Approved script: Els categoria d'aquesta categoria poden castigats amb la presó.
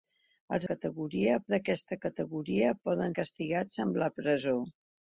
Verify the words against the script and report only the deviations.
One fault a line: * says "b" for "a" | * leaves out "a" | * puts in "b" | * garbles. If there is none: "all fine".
all fine